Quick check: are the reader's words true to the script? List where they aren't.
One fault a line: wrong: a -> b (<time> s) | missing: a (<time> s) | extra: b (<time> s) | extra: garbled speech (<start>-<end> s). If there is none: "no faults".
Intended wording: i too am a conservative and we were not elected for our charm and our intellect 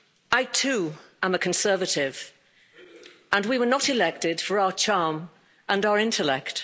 no faults